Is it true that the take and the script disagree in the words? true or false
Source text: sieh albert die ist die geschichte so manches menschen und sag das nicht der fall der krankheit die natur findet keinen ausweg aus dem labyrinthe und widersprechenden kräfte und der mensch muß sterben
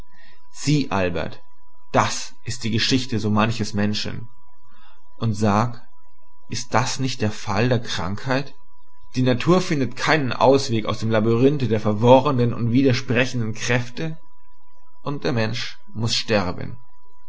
true